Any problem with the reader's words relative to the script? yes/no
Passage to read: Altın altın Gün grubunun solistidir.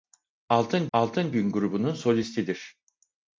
no